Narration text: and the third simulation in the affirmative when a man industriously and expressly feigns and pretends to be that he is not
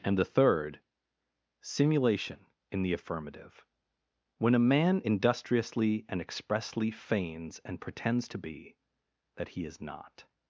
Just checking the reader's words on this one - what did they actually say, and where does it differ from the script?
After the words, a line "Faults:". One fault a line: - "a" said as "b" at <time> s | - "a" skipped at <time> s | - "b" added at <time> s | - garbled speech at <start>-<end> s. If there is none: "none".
and the third simulation in the affirmative when a man industriously and expressly feigns and pretends to be that he is not
Faults:
none